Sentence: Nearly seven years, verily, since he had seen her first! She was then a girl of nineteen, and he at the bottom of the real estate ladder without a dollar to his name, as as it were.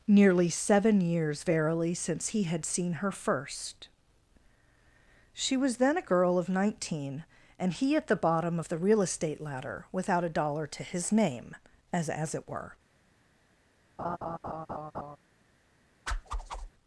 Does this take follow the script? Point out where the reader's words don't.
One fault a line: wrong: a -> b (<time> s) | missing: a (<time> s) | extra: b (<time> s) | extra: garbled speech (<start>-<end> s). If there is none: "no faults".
no faults